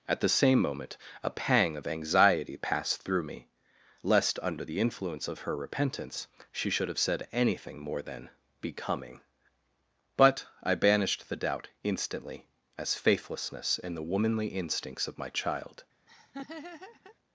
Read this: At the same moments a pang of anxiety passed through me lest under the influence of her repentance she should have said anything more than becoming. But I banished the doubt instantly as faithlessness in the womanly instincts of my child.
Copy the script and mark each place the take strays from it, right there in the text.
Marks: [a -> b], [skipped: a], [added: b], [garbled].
At the same [moments -> moment] a pang of anxiety passed through me lest under the influence of her repentance she should have said anything more than becoming. But I banished the doubt instantly as faithlessness in the womanly instincts of my child.